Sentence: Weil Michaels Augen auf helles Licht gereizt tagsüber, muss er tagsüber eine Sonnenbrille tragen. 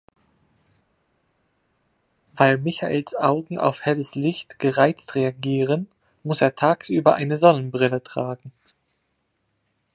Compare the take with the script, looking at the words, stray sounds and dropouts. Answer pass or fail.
fail